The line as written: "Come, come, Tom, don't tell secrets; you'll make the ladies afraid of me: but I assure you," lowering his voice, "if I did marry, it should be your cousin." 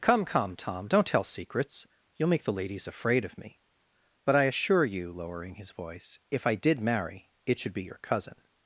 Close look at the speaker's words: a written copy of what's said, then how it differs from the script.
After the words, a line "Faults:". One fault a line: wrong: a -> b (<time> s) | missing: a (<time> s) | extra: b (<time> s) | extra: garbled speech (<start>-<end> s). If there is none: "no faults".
"Come, come, Tom, don't tell secrets; you'll make the ladies afraid of me: but I assure you," lowering his voice, "if I did marry, it should be your cousin."
Faults:
no faults